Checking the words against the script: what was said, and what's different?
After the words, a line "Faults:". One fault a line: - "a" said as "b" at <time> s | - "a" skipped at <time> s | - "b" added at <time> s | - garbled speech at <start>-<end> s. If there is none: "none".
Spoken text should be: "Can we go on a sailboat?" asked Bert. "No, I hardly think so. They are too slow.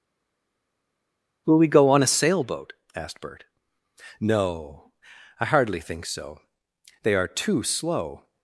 "Will we go on a sailboat?" asked Bert. "No, I hardly think so. They are too slow.
Faults:
- "Can" said as "Will" at 1.4 s